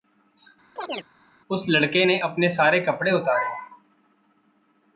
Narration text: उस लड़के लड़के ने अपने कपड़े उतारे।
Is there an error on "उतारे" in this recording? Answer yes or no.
no